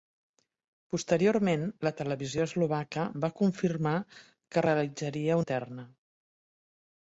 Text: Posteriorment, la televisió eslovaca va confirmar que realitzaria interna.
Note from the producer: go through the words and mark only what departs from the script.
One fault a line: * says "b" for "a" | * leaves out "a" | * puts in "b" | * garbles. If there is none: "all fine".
all fine